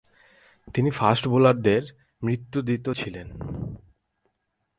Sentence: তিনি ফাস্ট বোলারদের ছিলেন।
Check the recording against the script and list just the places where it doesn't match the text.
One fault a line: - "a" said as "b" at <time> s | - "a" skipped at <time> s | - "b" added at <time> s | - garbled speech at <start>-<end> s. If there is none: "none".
- "মৃত্যুদূত" added at 2.2 s